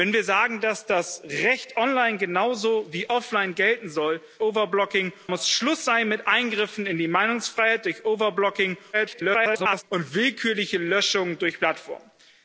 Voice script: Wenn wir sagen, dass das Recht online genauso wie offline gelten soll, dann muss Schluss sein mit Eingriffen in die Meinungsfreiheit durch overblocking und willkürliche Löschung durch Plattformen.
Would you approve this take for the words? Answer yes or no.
no